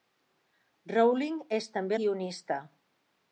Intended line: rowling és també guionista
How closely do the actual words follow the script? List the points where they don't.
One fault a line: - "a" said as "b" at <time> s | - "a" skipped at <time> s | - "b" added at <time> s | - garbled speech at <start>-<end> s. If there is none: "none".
none